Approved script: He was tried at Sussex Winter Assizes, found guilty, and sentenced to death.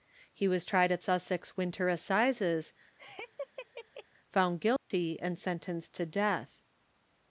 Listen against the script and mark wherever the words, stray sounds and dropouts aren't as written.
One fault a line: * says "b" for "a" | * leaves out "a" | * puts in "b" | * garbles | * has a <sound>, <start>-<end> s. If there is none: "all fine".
* has a laugh, 3.0-4.1 s
* has a dropout, 4.8-4.9 s